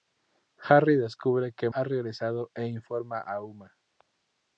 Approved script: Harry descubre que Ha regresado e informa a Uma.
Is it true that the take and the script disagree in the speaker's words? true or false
false